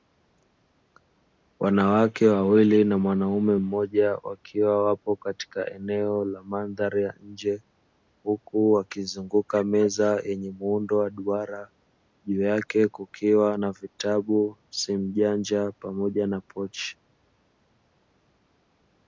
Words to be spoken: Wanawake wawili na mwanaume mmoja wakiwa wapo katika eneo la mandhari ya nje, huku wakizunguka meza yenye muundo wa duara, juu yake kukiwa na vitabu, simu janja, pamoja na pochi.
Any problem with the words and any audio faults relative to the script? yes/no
no